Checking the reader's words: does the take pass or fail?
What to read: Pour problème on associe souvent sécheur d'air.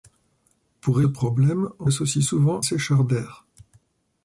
pass